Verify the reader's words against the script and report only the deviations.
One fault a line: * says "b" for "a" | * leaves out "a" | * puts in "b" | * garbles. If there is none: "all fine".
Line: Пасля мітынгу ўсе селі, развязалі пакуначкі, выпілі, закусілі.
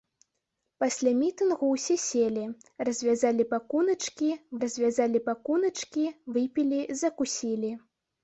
* puts in "развязалі пакуначкі"